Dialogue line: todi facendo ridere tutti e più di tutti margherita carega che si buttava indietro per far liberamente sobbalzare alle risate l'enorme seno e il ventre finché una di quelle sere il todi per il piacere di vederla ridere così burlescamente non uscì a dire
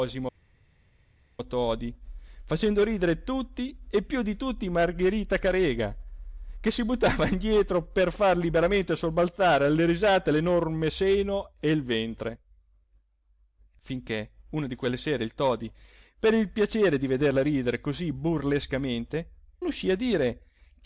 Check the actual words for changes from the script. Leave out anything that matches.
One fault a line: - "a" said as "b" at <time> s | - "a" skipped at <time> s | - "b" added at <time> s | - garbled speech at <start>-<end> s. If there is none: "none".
- "non" skipped at 19.3 s